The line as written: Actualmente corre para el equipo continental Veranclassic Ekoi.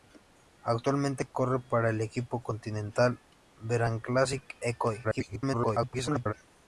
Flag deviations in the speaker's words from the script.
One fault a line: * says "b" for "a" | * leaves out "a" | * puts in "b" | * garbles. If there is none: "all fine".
* garbles